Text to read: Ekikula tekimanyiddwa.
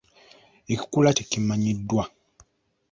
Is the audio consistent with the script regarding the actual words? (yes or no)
yes